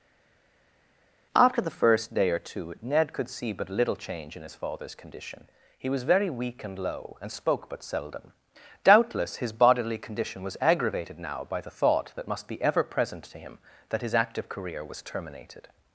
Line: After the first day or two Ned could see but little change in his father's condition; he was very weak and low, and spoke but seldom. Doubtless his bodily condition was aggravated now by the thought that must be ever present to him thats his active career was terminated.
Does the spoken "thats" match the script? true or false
false